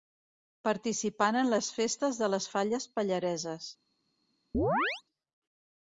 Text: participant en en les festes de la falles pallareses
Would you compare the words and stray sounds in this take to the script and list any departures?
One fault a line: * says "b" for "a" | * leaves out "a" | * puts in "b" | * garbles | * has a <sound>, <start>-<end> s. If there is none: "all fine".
* leaves out "en"
* says "les" for "la"
* has a chirp, 4.5-5.0 s